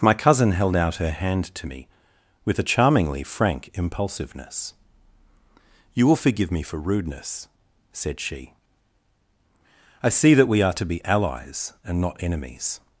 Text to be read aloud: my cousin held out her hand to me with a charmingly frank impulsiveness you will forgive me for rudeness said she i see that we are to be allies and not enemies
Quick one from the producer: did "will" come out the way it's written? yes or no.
yes